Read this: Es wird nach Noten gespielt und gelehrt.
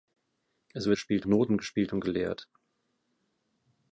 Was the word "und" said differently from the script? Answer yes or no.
no